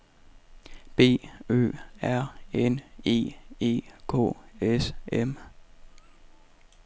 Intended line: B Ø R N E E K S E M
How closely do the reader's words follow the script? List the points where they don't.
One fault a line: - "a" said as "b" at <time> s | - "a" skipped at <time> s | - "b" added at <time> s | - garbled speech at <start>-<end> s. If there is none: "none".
- "E" skipped at 4.9 s